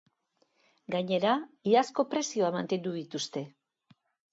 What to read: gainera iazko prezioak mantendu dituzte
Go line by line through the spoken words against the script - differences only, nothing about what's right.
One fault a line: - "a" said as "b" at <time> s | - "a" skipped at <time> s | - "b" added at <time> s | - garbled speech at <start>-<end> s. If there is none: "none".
none